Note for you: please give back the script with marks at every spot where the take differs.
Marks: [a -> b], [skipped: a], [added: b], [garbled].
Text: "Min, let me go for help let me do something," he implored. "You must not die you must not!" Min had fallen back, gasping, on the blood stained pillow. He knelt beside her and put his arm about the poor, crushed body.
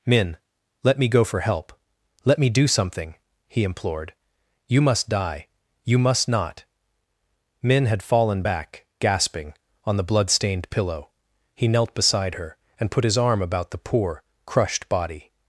"Min, let me go for help let me do something," he implored. "You must [skipped: not] die you must not!" Min had fallen back, gasping, on the blood stained pillow. He knelt beside her and put his arm about the poor, crushed body.